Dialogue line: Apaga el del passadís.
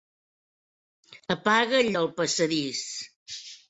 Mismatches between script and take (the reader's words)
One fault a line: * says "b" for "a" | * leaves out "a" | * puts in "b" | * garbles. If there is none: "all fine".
all fine